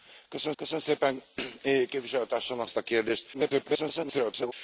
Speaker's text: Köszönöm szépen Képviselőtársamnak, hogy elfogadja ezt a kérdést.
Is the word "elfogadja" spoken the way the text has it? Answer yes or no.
no